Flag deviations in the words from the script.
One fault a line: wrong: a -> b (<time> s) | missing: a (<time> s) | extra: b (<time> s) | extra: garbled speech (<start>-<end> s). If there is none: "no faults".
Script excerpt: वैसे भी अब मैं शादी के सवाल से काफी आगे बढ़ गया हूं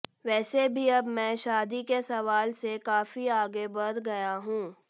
no faults